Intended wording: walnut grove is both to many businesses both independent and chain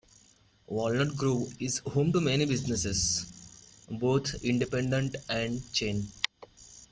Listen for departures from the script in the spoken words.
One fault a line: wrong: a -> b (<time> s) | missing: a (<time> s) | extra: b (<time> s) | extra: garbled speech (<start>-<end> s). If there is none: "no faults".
wrong: both -> home (1.9 s)